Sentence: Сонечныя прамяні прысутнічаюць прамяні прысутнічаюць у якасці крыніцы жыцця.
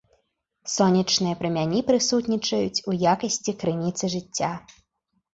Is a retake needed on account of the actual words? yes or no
yes